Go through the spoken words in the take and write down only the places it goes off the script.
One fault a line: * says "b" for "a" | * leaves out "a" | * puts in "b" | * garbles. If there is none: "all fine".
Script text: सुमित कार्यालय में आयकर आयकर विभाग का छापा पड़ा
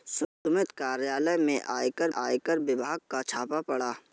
all fine